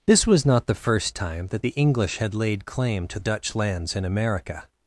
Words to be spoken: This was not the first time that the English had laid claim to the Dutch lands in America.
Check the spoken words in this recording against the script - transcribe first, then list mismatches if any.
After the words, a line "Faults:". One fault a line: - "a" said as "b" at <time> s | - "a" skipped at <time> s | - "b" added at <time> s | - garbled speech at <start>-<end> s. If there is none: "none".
This was not the first time that the English had laid claim to Dutch lands in America.
Faults:
- "the" skipped at 3.2 s